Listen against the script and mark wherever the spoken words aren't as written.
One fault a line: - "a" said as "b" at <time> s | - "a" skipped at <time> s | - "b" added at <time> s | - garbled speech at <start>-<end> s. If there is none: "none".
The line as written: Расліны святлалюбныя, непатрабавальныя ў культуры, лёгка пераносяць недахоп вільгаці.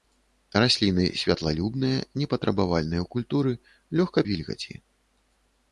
- "пераносяць недахоп" skipped at 4.2 s